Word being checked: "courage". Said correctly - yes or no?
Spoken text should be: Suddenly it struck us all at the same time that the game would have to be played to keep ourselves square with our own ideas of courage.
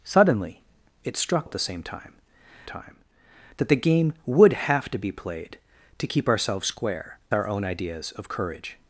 yes